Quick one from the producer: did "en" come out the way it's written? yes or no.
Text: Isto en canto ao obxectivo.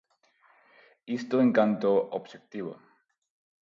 yes